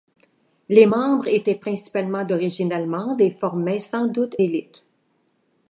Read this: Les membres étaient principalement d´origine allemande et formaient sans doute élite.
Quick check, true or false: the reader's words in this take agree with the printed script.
true